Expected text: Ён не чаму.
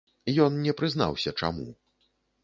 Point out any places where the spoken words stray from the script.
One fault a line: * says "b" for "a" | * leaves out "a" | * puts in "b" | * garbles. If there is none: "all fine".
* puts in "прызнаўся"